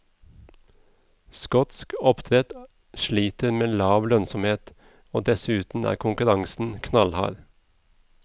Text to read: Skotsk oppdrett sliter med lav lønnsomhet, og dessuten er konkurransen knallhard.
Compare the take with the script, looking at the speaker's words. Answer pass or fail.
pass